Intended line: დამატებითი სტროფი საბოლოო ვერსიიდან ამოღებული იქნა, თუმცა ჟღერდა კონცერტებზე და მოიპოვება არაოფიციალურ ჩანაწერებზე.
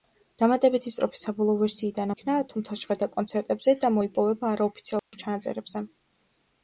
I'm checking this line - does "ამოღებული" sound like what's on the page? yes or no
no